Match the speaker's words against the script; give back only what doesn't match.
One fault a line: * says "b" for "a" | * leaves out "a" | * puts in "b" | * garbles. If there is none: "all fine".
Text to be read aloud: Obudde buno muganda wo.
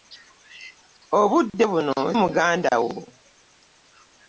all fine